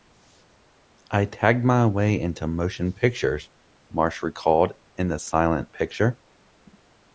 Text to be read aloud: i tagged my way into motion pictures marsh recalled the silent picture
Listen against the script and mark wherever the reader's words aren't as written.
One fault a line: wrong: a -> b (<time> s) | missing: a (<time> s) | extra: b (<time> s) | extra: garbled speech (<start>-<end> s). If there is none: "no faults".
extra: in (5.0 s)